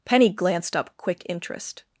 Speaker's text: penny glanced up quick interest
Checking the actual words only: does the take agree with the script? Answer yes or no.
yes